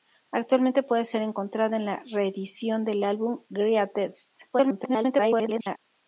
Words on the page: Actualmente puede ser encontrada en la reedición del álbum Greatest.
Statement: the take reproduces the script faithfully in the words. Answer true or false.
false